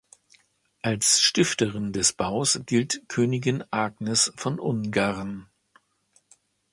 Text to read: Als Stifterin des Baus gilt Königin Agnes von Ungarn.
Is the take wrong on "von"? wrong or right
right